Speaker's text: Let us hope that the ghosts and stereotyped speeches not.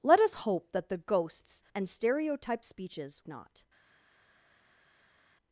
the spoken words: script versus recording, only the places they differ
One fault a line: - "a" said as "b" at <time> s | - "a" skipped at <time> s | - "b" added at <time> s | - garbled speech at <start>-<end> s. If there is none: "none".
none